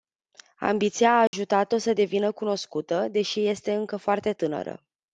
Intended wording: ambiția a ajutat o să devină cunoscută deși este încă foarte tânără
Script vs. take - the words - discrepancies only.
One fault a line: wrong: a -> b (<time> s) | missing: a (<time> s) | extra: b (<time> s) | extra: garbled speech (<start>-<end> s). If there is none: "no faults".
no faults